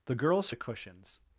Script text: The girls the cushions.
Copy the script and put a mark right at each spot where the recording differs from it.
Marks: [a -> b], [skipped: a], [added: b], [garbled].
The girls the cushions.